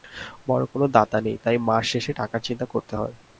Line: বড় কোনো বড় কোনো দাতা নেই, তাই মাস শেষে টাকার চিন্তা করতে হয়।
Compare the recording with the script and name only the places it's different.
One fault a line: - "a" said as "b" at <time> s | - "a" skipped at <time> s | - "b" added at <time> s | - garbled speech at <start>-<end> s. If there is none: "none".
- "বড় কোনো" skipped at 0.8 s